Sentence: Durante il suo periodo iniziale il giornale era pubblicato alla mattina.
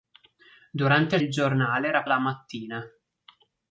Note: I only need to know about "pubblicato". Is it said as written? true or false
false